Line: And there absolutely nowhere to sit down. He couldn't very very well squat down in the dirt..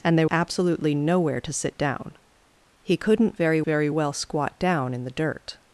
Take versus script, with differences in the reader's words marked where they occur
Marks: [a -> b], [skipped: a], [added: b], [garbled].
And there absolutely nowhere to sit down. He couldn't very very well squat down in the dirt..